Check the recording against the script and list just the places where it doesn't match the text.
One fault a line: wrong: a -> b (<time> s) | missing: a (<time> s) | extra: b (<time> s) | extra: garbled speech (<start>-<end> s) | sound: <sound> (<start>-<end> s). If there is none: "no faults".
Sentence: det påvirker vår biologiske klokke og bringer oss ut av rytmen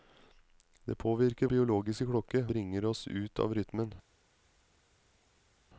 missing: vår (1.5 s)
missing: og (2.4 s)